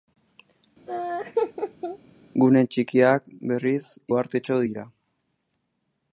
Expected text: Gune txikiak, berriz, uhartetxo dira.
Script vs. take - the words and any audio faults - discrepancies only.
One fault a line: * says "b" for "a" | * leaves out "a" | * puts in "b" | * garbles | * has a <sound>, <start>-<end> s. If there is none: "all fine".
* has a laugh, 0.9-2.0 s